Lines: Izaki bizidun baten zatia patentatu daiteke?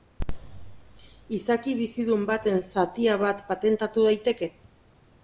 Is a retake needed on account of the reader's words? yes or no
yes